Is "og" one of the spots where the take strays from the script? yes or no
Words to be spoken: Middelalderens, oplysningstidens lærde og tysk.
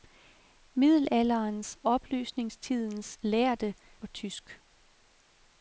no